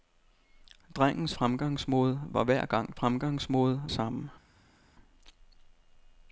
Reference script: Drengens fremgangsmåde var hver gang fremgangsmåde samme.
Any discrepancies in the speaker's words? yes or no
no